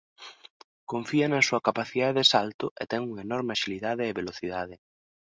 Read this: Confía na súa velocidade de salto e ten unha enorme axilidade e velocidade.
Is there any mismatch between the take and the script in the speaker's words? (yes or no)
yes